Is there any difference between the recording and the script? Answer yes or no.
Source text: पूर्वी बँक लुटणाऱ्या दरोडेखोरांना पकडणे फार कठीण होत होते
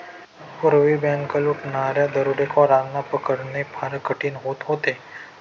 no